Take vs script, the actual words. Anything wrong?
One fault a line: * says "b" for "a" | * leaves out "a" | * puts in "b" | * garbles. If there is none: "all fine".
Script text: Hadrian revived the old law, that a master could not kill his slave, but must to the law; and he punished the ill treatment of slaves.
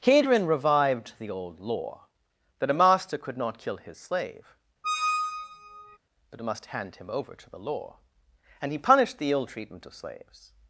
* puts in "hand him over"